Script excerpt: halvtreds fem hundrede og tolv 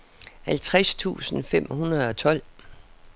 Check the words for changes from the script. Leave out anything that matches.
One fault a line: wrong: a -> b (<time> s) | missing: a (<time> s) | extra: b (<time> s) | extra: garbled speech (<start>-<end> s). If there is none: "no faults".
extra: tusind (0.9 s)